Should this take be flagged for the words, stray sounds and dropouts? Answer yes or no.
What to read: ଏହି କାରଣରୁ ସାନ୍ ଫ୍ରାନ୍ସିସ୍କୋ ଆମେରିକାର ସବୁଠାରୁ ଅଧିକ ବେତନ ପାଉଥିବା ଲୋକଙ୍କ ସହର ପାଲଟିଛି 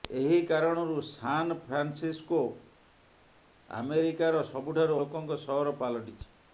yes